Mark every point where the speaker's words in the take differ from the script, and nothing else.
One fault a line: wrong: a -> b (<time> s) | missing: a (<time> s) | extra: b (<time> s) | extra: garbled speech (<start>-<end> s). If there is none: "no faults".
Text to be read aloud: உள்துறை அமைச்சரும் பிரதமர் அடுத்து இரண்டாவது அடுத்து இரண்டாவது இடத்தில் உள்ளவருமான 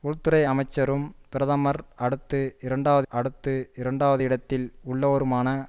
no faults